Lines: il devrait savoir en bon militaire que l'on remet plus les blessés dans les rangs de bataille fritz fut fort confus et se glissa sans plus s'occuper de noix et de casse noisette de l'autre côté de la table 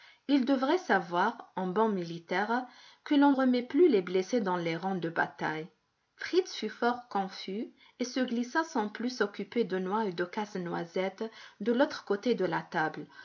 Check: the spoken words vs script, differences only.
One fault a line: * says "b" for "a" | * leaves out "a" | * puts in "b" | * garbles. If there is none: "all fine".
all fine